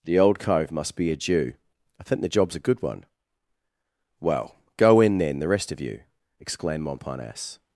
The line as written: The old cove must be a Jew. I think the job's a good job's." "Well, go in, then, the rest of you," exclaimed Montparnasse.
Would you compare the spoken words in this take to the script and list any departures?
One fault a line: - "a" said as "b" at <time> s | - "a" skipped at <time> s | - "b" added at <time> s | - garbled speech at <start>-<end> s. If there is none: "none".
- "job's" said as "one" at 2.8 s